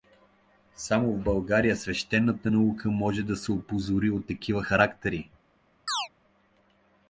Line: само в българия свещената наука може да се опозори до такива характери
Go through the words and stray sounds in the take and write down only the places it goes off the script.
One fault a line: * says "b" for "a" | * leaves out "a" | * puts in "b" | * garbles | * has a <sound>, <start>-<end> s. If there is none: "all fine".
* says "от" for "до"
* has a chirp, 5.9-6.1 s